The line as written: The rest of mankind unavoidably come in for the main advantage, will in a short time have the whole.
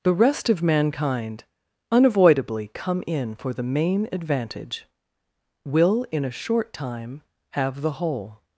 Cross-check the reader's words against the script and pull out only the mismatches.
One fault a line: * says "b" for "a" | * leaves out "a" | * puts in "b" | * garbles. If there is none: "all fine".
all fine